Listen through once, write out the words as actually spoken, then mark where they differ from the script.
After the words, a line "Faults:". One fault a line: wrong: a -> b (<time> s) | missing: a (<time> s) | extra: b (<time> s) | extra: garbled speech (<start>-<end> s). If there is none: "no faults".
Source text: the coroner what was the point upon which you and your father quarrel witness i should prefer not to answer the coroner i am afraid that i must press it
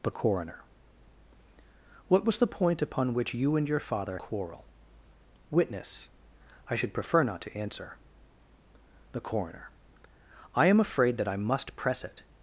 the coroner what was the point upon which you and your father quarrel witness i should prefer not to answer the coroner i am afraid that i must press it
Faults:
no faults